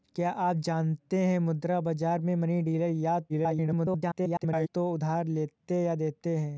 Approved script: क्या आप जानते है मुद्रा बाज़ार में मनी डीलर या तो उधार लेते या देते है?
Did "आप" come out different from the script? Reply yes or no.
no